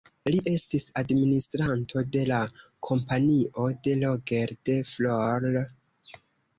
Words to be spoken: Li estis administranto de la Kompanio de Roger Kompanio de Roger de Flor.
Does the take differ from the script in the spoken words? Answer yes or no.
yes